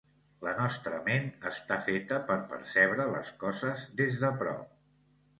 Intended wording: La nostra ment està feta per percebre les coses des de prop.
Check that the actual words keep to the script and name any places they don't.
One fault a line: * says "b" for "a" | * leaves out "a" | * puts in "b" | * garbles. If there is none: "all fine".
all fine